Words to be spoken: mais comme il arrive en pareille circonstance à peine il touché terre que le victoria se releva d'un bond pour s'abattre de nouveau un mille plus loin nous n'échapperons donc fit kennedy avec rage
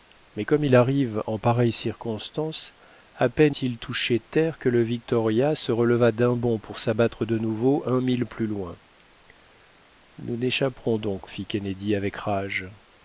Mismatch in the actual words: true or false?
false